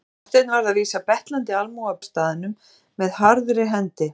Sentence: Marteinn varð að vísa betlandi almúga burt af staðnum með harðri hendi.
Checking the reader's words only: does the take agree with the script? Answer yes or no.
no